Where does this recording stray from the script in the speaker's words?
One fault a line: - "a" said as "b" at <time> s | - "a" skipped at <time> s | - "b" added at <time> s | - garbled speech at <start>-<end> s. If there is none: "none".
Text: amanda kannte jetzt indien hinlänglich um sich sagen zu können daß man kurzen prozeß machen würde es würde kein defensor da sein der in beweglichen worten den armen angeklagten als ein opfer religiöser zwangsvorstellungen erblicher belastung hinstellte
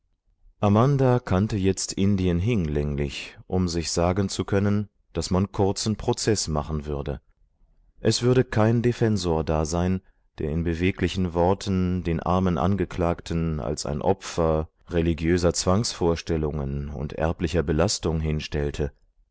- "und" added at 16.9 s